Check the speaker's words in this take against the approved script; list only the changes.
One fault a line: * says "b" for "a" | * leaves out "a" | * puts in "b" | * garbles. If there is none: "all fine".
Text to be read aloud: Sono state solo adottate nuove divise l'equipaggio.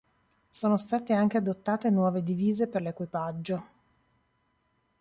* says "anche" for "solo"
* puts in "per"